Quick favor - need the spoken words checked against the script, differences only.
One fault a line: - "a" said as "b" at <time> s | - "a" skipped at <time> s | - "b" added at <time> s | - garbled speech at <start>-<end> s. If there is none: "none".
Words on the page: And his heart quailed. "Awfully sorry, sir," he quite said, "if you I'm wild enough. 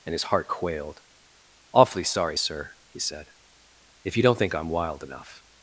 - "quite" skipped at 3.0 s
- "don't think" added at 4.2 s